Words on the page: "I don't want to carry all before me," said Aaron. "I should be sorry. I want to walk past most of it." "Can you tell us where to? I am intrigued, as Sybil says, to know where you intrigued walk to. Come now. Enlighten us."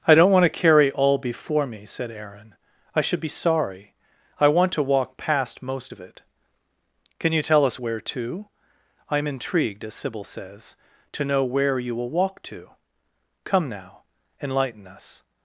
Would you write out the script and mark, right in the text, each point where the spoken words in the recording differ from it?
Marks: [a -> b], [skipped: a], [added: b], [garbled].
"I don't want to carry all before me," said Aaron. "I should be sorry. I want to walk past most of it." "Can you tell us where to? I am intrigued, as Sybil says, to know where you [intrigued -> will] walk to. Come now. Enlighten us."